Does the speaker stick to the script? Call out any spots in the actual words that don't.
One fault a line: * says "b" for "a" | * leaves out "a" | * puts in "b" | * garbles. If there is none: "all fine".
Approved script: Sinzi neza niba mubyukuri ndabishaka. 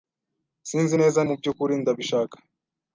* leaves out "niba"